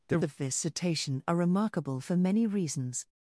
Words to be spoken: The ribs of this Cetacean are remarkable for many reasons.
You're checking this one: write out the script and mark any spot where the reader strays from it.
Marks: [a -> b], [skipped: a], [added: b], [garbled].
The [skipped: ribs] of this Cetacean are remarkable for many reasons.